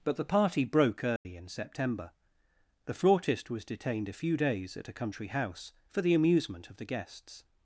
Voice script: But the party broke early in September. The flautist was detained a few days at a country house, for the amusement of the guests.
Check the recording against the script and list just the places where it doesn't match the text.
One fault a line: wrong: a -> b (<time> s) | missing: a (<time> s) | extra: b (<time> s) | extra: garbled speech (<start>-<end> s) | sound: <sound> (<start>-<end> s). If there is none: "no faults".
sound: dropout (1.2-1.3 s)